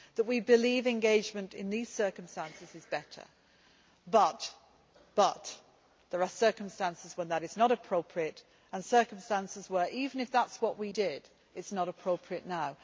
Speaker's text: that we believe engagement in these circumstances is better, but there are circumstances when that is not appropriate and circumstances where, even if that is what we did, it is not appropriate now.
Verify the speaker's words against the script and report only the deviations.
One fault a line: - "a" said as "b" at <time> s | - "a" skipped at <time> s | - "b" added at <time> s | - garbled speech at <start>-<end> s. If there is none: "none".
none